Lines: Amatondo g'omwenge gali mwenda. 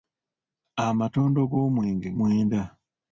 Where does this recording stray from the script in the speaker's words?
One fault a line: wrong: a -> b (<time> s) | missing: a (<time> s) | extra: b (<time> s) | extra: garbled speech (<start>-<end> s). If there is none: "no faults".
missing: gali (2.1 s)